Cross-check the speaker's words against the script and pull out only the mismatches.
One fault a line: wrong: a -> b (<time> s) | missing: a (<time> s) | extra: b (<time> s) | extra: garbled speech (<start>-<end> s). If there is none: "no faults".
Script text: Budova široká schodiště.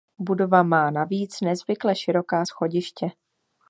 extra: má navíc nezvykle (0.6 s)